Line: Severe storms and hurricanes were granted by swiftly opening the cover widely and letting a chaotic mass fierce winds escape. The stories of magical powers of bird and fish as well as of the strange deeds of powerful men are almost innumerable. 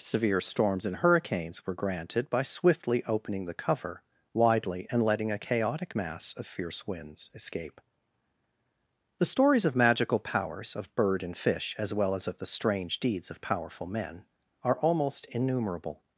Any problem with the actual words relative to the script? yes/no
yes